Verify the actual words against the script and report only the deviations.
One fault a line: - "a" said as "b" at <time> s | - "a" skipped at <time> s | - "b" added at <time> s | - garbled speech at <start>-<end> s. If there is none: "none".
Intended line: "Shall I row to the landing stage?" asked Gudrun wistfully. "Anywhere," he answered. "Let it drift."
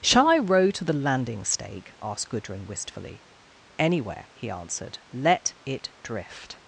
- "stage" said as "stake" at 1.4 s